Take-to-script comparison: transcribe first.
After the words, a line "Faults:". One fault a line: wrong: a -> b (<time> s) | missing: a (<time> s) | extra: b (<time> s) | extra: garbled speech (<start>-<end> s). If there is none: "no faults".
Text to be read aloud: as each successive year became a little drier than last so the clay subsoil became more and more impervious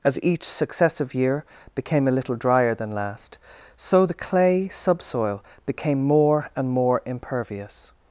as each successive year became a little drier than last so the clay subsoil became more and more impervious
Faults:
no faults